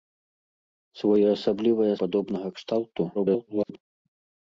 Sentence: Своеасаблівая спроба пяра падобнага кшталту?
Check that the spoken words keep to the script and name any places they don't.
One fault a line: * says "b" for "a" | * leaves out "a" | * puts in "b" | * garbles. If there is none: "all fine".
* leaves out "спроба пяра"
* garbles